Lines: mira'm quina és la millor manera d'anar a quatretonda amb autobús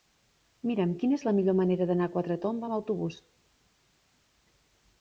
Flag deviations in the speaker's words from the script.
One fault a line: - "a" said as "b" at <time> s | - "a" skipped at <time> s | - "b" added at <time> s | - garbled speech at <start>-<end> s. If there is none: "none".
none